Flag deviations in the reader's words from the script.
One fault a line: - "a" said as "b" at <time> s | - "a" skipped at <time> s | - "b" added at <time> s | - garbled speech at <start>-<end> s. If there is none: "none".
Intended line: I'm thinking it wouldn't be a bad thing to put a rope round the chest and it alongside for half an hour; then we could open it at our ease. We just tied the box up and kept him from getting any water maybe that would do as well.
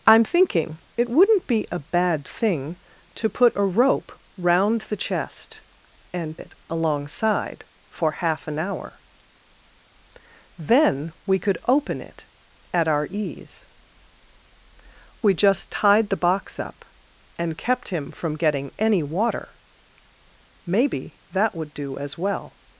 none